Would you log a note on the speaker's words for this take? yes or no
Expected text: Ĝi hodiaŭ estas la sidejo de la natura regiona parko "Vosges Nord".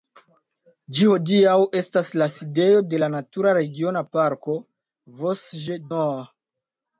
no